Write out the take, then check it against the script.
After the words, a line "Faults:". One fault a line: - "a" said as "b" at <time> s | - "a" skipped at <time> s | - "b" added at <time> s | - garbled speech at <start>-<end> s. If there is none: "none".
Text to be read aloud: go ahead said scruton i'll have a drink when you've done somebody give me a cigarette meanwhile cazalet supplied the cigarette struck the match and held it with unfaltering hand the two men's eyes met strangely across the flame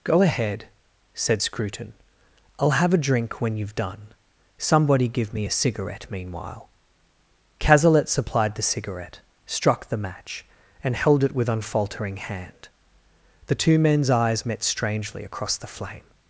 go ahead said scruton i'll have a drink when you've done somebody give me a cigarette meanwhile cazalet supplied the cigarette struck the match and held it with unfaltering hand the two men's eyes met strangely across the flame
Faults:
none